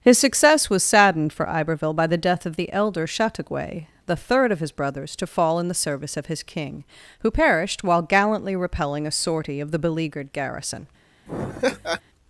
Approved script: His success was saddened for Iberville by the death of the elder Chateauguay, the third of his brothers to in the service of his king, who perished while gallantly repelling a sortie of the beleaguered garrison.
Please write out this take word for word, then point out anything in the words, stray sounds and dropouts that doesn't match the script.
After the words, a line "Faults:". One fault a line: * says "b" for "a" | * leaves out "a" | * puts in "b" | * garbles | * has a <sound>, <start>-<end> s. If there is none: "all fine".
His success was saddened for Iberville by the death of the elder Chateauguay, the third of his brothers to fall in the service of his king, who perished while gallantly repelling a sortie of the beleaguered garrison.
Faults:
* puts in "fall"
* has a laugh, 11.3-12.0 s